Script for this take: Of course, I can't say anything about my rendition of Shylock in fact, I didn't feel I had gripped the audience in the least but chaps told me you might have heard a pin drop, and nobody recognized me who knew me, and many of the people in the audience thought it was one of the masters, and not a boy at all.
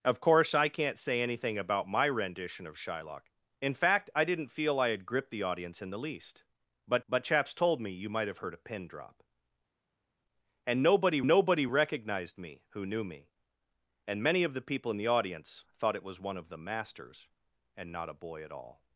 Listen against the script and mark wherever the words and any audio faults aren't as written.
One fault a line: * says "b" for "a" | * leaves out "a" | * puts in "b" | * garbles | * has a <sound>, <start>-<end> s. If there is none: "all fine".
* puts in "but"
* puts in "nobody"